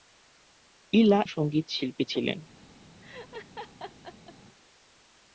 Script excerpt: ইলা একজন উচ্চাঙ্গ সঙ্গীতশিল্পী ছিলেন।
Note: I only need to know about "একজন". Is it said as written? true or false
false